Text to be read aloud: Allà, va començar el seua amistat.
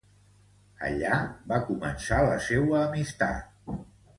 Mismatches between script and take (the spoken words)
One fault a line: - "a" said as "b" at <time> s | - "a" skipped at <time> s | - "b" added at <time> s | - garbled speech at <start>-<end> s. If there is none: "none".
- "el" said as "la" at 2.3 s